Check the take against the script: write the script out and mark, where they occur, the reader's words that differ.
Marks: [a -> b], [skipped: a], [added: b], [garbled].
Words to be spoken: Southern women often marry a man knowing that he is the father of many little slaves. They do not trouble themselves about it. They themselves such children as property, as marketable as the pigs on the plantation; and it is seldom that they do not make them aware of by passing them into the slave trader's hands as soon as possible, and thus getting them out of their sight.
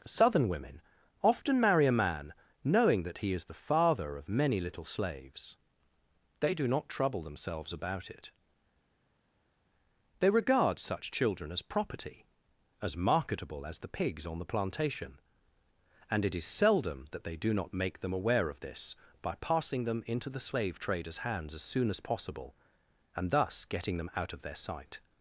Southern women often marry a man knowing that he is the father of many little slaves. They do not trouble themselves about it. They [themselves -> regard] such children as property, as marketable as the pigs on the plantation; and it is seldom that they do not make them aware of [added: this] by passing them into the slave trader's hands as soon as possible, and thus getting them out of their sight.